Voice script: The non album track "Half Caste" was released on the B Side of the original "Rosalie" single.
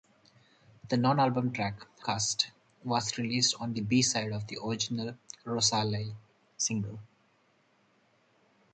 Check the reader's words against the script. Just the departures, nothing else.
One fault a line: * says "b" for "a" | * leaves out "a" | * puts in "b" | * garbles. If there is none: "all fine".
* leaves out "Half"